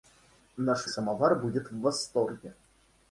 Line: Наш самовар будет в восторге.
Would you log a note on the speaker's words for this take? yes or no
no